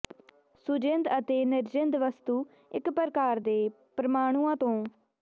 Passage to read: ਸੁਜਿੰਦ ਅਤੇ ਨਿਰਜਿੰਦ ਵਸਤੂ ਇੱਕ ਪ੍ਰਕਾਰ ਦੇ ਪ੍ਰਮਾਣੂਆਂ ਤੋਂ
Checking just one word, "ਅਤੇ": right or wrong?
right